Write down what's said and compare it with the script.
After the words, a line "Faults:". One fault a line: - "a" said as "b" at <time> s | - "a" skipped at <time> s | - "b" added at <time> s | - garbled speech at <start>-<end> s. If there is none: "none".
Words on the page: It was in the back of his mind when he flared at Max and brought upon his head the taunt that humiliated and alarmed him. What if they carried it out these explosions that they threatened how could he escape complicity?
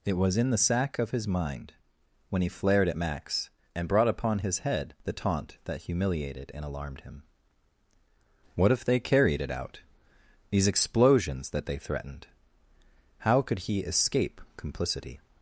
It was in the sack of his mind when he flared at Max and brought upon his head the taunt that humiliated and alarmed him. What if they carried it out these explosions that they threatened how could he escape complicity?
Faults:
- "back" said as "sack" at 0.6 s